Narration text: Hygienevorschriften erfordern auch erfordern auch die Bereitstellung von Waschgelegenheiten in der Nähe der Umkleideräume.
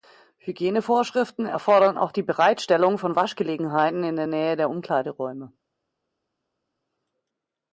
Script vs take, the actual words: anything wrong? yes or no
yes